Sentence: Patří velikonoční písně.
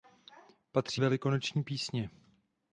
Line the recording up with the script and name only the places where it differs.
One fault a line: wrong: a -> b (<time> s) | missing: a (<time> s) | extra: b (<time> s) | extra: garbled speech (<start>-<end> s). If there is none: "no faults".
no faults